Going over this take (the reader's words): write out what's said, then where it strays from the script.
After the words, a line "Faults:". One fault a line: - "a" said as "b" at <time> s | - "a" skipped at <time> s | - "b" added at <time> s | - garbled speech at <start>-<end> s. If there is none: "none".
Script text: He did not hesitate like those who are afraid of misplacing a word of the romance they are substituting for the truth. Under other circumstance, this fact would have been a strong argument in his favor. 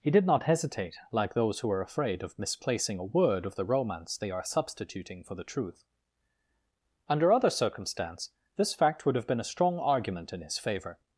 He did not hesitate like those who are afraid of misplacing a word of the romance they are substituting for the truth. Under other circumstance, this fact would have been a strong argument in his favor.
Faults:
none